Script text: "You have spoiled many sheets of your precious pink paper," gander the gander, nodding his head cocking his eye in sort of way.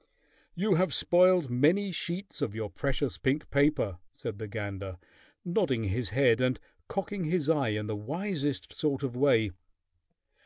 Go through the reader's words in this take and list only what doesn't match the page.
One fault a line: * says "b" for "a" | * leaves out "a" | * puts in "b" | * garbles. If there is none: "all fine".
* says "said" for "gander"
* puts in "and"
* puts in "the wisest"